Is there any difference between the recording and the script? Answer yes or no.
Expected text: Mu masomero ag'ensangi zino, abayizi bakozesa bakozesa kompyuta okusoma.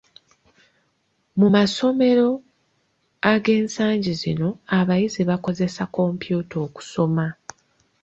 yes